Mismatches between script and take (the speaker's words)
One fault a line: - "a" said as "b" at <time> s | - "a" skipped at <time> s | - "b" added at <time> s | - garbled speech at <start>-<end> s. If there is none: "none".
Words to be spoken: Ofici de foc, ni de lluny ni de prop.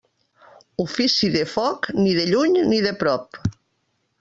none